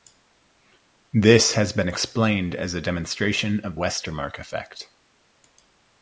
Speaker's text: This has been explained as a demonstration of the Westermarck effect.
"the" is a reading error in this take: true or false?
true